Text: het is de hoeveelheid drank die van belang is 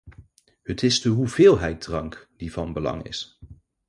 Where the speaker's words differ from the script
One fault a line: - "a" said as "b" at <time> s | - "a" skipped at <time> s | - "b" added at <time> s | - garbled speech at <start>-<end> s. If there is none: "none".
none